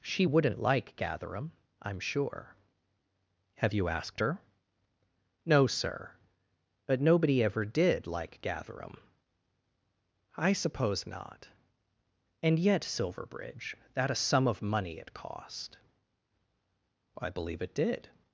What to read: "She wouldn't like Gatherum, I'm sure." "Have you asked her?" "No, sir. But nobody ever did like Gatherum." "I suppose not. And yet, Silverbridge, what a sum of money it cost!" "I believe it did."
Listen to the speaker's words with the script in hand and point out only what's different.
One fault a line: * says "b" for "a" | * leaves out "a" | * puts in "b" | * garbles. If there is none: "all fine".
* says "that" for "what"